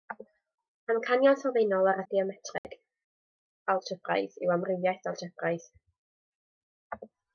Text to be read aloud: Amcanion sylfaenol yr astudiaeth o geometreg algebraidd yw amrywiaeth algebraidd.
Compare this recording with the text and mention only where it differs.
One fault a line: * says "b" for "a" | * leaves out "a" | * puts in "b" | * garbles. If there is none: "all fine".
* leaves out "astudiaeth"